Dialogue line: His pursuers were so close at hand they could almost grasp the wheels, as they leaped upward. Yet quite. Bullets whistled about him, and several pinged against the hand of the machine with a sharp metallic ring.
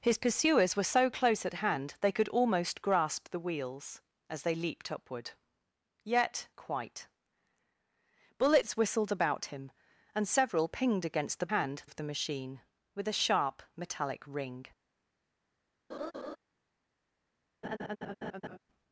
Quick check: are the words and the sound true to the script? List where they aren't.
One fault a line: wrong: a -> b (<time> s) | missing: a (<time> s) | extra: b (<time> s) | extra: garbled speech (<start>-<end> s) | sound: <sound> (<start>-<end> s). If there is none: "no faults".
sound: laugh (15.9-16.4 s)
sound: laugh (17.6-18.6 s)